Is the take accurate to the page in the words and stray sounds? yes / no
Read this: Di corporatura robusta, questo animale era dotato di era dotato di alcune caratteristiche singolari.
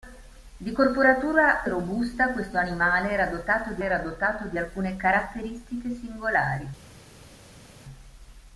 yes